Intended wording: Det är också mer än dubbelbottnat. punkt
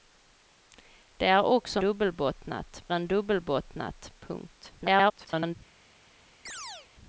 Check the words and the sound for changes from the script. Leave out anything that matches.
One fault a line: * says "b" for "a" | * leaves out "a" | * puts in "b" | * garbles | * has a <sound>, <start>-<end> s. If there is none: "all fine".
* says "dubbelbottnat" for "mer"
* garbles
* has a chirp, 6.5-6.9 s